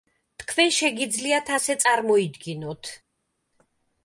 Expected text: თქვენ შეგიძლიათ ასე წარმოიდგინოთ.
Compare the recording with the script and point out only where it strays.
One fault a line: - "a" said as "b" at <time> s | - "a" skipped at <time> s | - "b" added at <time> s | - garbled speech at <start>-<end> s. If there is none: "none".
none